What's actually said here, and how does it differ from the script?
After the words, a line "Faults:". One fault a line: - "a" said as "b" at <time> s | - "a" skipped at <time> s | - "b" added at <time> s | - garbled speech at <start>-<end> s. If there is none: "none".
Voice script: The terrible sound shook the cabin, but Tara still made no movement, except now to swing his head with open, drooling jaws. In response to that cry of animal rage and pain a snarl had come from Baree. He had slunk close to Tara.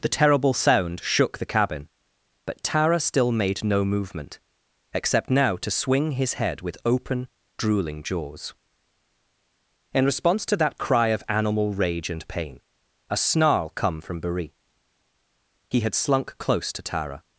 The terrible sound shook the cabin, but Tara still made no movement, except now to swing his head with open, drooling jaws. In response to that cry of animal rage and pain a snarl come from Baree. He had slunk close to Tara.
Faults:
- "had" skipped at 13.7 s